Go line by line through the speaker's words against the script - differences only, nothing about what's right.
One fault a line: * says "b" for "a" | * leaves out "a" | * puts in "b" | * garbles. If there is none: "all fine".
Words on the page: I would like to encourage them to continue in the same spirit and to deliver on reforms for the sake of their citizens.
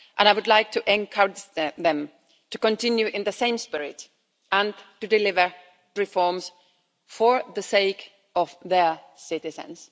* leaves out "on"